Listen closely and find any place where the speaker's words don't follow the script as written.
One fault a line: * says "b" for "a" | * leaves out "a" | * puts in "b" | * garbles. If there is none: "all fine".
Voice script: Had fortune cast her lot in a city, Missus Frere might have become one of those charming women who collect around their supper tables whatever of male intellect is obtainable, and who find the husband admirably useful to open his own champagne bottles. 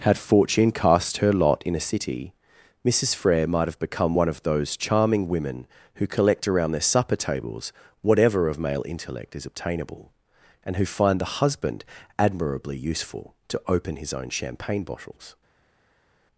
all fine